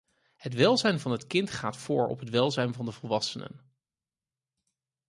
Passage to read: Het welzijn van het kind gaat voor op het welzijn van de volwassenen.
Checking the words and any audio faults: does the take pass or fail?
pass